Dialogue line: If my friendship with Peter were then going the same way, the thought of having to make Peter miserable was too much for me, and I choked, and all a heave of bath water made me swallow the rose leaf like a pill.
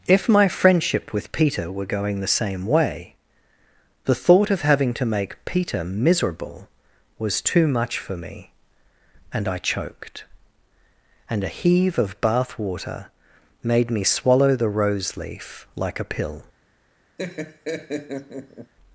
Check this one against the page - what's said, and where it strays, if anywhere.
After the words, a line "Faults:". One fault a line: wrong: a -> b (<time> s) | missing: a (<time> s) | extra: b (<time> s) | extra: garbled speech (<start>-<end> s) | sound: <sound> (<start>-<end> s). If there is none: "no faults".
If my friendship with Peter were going the same way, the thought of having to make Peter miserable was too much for me, and I choked, and a heave of bath water made me swallow the rose leaf like a pill.
Faults:
missing: then (1.9 s)
missing: all (11.4 s)
sound: laugh (17.2-18.7 s)